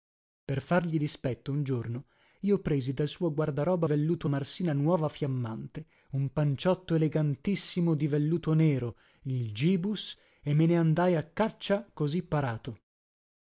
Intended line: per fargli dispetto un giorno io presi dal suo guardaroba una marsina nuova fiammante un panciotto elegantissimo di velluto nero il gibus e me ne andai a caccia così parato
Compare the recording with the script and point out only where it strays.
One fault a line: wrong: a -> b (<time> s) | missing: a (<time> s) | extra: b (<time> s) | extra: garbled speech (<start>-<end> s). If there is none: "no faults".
wrong: una -> velluto (3.8 s)